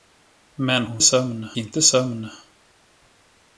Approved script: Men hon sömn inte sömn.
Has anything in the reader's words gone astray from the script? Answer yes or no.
no